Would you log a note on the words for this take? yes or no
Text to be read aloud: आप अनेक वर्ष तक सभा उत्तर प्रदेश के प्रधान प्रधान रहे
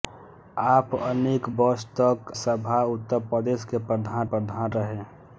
no